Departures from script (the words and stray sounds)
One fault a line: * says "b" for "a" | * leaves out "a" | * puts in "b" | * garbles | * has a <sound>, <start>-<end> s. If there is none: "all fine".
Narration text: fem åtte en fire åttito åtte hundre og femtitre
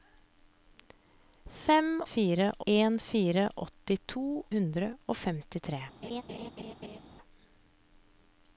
* says "fire" for "åtte"
* leaves out "åtte"
* has a laugh, 6.0-7.0 s